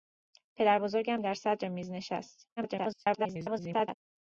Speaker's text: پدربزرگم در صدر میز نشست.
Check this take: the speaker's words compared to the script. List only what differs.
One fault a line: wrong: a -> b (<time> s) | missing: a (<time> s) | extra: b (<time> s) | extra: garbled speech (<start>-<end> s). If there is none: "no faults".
extra: garbled speech (2.6-3.9 s)